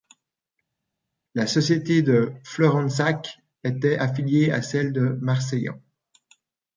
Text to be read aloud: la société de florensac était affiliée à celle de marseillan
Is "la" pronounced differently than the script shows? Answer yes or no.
no